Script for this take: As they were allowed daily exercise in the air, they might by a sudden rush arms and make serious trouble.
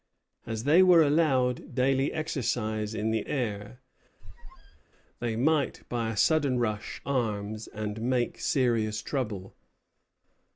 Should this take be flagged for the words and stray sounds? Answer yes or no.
yes